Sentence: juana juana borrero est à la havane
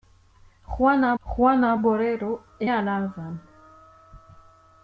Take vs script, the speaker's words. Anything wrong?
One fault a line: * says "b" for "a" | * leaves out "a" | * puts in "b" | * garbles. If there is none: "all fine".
all fine